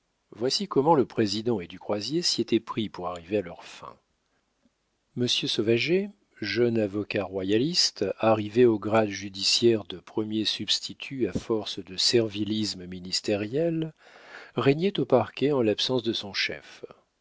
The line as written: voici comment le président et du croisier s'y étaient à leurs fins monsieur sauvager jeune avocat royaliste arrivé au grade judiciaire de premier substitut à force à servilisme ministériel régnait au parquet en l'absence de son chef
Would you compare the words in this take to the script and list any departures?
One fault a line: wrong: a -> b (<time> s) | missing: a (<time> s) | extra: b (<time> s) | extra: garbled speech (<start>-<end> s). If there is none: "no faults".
extra: pris pour arriver (2.6 s)
wrong: à -> de (11.8 s)